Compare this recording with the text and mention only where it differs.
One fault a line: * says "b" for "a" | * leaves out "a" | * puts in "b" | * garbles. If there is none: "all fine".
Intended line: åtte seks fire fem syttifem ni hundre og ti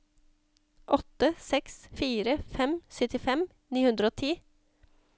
all fine